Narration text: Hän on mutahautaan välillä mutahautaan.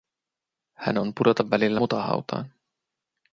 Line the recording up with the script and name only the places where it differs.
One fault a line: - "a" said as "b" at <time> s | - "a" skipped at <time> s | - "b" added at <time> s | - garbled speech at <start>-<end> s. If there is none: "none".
- "mutahautaan" said as "pudota" at 1.2 s